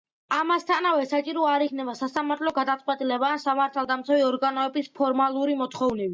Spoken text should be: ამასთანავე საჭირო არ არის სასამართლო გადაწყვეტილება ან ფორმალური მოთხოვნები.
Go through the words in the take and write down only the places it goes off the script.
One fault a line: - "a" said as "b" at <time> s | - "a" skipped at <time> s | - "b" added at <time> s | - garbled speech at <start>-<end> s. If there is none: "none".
- "არის" said as "იქნება" at 1.6 s
- "სამართალდამცავი ორგანოების" added at 3.5 s